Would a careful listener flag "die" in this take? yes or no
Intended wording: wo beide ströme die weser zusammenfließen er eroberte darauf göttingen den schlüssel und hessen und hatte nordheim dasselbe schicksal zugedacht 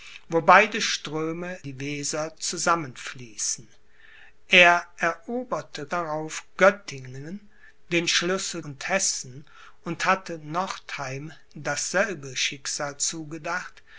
no